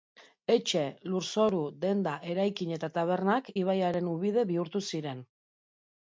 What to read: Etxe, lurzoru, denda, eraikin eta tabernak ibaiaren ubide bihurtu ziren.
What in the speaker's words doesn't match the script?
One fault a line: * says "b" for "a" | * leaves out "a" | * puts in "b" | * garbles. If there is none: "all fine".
all fine